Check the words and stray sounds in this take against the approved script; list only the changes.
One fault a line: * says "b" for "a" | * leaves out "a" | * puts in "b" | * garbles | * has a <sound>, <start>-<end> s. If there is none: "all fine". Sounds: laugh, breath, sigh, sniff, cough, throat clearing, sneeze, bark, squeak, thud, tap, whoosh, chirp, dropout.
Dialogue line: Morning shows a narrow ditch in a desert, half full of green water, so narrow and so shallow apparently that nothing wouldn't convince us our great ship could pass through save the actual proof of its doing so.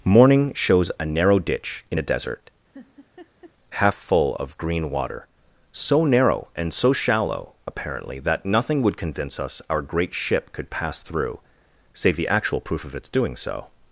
* has a laugh, 2.7-3.5 s
* says "would" for "wouldn't"